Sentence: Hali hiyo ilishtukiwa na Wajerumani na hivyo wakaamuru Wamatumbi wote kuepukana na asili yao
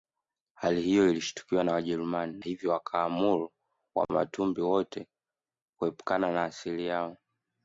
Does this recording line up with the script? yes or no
no